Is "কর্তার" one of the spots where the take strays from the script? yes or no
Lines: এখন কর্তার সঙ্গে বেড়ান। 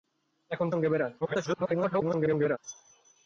yes